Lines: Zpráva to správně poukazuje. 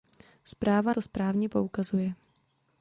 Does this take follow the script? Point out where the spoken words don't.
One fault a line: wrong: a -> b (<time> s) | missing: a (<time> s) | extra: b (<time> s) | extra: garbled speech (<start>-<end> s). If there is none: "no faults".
no faults